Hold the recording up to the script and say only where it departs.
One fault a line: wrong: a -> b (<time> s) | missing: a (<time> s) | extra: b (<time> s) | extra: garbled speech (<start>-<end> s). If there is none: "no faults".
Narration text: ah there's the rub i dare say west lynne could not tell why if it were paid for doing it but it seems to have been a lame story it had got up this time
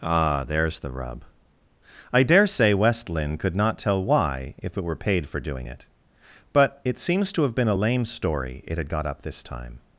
no faults